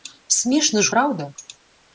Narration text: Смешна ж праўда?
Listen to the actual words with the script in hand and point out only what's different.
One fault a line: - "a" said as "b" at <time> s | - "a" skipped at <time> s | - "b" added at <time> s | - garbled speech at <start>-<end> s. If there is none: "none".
none